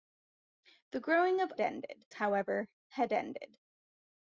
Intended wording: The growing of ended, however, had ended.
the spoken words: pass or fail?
pass